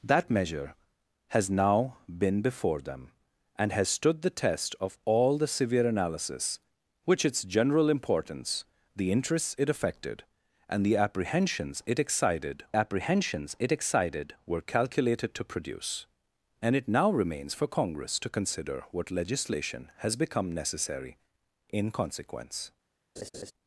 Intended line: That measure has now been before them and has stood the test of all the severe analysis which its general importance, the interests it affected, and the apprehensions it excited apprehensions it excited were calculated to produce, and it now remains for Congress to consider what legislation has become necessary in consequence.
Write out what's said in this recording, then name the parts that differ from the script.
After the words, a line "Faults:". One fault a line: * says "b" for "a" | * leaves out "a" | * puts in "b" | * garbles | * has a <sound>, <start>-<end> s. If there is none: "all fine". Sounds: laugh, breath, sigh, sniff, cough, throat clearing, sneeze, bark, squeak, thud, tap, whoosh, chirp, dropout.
That measure has now been before them and has stood the test of all the severe analysis which its general importance, the interests it affected, and the apprehensions it excited apprehensions it excited were calculated to produce, and it now remains for Congress to consider what legislation has become necessary in consequence.
Faults:
* has a laugh, 23.2-23.5 s